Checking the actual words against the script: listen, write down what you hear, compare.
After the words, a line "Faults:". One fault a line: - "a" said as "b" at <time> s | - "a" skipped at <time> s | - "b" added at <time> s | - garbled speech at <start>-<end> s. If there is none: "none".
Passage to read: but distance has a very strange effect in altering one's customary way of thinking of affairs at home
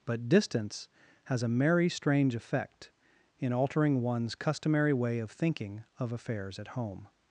but distance has a merry strange effect in altering one's customary way of thinking of affairs at home
Faults:
- "very" said as "merry" at 1.5 s